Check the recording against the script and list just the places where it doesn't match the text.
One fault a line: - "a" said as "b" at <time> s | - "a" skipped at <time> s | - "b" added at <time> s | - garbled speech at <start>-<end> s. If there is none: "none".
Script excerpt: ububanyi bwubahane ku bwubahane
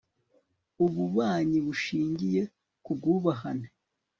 - "bwubahane" said as "bushingiye" at 1.6 s